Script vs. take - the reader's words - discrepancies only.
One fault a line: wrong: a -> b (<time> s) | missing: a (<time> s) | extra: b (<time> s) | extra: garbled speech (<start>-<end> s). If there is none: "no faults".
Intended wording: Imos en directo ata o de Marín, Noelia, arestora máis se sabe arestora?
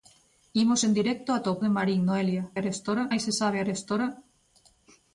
no faults